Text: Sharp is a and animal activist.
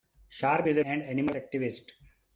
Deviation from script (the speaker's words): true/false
false